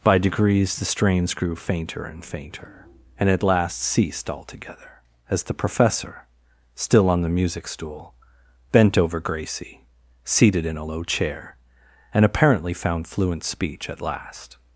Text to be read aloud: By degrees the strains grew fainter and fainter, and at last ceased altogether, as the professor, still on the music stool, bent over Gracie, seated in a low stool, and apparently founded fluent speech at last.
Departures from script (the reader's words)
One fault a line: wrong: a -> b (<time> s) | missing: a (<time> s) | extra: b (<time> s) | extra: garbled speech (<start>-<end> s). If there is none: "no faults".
wrong: stool -> chair (11.0 s)
wrong: founded -> found (12.7 s)